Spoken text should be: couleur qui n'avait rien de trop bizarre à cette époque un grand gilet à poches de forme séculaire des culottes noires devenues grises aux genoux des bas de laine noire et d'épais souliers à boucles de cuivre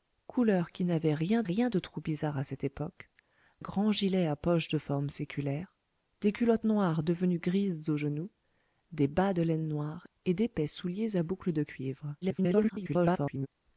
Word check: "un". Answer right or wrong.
wrong